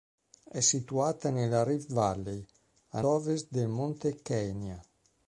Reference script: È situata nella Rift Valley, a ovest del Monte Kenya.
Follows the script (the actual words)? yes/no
yes